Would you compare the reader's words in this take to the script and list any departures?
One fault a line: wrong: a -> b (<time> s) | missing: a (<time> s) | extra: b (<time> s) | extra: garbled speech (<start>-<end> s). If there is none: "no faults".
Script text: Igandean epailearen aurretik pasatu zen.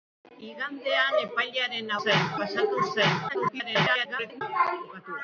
wrong: aurretik -> zen (2.0 s)
extra: garbled speech (3.3-4.4 s)